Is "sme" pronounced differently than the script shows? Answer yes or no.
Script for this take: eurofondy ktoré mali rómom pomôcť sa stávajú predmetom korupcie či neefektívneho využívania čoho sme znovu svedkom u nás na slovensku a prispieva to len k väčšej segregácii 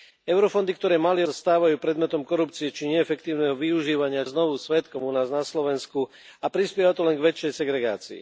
yes